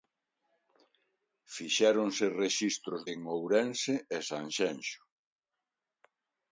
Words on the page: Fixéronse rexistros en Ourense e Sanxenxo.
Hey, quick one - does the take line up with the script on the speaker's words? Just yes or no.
yes